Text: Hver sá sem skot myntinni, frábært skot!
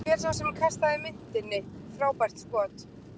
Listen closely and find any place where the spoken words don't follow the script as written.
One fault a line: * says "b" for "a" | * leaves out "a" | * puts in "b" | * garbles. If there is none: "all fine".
* says "kastaði" for "skot"